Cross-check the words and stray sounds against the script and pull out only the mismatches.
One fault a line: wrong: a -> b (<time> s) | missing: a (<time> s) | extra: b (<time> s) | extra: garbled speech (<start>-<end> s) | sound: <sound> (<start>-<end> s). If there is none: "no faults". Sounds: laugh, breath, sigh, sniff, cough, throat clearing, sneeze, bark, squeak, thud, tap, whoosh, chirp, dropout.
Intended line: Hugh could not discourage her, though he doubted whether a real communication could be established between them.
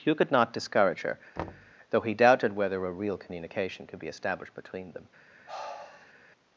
sound: thud (1.4-1.7 s)
sound: sigh (5.5-6.1 s)